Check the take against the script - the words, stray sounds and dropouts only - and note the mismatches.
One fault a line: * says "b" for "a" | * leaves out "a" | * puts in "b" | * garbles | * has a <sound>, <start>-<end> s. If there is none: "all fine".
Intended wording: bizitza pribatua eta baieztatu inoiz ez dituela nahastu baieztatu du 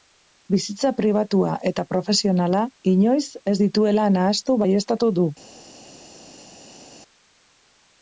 * says "profesionala" for "baieztatu"